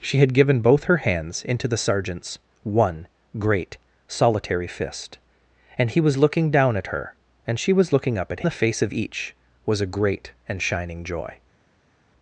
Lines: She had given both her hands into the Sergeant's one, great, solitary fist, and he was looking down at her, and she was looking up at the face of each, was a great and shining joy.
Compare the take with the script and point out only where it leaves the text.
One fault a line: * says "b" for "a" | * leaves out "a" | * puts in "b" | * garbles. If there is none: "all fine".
all fine